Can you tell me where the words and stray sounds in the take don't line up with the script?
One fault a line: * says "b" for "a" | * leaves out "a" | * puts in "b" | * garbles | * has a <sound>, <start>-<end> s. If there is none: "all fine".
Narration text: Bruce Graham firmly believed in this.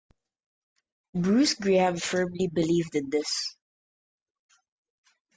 all fine